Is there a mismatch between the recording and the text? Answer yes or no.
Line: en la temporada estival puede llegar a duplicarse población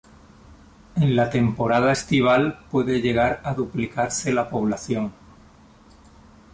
yes